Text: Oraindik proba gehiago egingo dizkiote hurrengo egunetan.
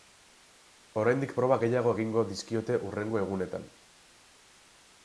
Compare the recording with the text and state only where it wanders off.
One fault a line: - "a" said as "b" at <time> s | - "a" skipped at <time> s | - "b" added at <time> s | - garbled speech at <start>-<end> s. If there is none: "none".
none